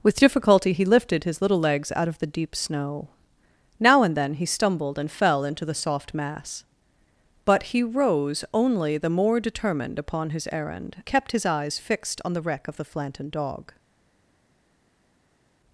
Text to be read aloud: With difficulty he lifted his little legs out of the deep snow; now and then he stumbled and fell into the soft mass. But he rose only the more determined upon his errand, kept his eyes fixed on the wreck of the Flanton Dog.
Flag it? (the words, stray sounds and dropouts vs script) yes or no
no